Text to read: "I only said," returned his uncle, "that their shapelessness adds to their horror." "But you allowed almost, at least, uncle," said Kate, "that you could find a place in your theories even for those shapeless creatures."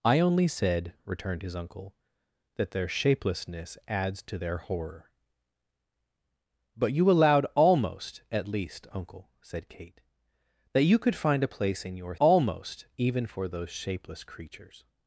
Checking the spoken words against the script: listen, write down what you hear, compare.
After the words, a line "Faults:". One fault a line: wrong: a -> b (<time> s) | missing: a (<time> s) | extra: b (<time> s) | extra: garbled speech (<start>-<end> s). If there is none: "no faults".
"I only said," returned his uncle, "that their shapelessness adds to their horror." "But you allowed almost, at least, uncle," said Kate, "that you could find a place in your almost even for those shapeless creatures."
Faults:
wrong: theories -> almost (12.2 s)